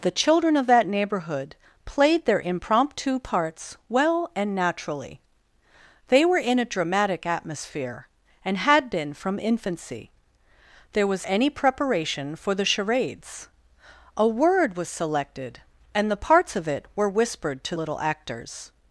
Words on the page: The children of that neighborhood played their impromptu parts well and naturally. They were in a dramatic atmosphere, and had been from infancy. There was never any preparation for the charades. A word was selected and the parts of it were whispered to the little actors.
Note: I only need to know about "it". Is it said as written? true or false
true